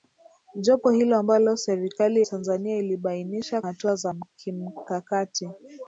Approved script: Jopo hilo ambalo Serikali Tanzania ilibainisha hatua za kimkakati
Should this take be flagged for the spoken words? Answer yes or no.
no